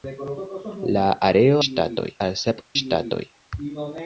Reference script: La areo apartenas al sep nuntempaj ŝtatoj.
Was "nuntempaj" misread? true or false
true